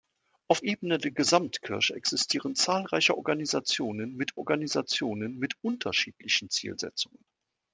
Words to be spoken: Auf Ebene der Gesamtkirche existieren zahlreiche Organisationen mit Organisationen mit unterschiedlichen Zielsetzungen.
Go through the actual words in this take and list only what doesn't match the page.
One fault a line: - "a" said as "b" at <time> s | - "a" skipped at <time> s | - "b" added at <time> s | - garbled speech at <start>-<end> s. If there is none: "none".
none